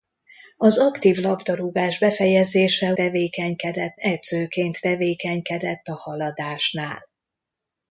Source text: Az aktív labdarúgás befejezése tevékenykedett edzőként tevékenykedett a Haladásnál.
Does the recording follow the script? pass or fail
pass